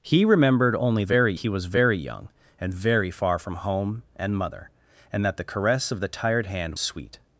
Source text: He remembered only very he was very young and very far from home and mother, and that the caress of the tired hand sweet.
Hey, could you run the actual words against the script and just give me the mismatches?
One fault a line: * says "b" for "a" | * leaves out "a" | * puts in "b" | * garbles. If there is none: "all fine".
all fine